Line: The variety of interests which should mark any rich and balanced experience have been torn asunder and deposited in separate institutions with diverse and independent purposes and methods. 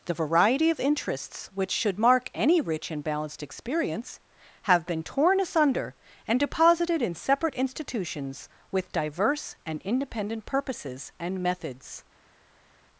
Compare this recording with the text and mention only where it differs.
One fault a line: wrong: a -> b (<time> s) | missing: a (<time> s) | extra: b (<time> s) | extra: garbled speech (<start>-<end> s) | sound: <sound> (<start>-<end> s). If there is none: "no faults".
no faults